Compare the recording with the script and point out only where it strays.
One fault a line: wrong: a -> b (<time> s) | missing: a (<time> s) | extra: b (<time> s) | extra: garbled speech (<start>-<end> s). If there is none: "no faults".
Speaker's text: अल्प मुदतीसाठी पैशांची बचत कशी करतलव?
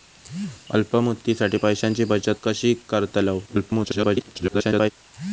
extra: garbled speech (3.5-4.9 s)